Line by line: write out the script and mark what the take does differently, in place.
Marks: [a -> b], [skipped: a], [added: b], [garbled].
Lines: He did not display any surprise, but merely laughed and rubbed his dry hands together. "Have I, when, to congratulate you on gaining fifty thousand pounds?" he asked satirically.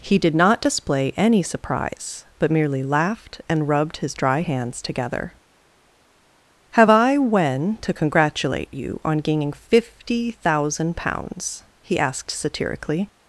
He did not display any surprise, but merely laughed and rubbed his dry hands together. "Have I, when, to congratulate you on gaining fifty thousand pounds?" he asked satirically.